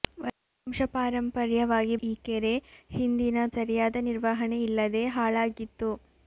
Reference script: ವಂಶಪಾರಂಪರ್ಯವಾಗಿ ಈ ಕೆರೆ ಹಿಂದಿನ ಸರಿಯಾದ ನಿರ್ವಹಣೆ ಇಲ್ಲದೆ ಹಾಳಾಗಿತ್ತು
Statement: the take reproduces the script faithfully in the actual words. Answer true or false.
true